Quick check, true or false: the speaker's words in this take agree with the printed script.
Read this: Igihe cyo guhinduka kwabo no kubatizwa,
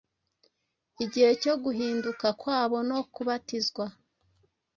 true